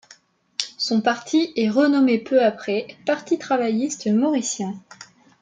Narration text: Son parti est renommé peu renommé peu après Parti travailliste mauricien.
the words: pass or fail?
fail